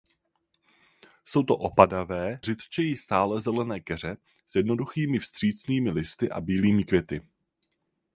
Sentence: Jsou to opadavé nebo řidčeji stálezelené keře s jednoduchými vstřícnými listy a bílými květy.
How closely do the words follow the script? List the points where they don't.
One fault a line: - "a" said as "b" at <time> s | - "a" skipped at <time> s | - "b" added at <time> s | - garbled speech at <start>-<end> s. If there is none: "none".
- "nebo" skipped at 2.4 s